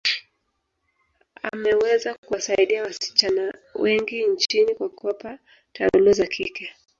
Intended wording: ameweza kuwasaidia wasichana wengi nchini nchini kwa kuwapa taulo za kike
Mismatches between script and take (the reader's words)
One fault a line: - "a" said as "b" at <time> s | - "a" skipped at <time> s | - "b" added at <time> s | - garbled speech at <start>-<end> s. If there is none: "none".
- "nchini" skipped at 4.8 s